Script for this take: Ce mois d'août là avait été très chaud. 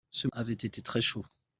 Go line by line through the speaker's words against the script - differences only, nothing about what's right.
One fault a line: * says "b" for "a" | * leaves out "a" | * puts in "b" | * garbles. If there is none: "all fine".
* leaves out "mois d'août là"